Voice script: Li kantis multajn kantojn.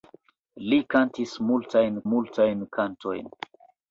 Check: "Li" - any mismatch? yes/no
no